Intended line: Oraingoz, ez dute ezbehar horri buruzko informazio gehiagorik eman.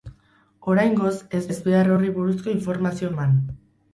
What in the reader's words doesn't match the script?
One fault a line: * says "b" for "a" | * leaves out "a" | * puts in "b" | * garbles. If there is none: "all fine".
* leaves out "dute"
* leaves out "gehiagorik"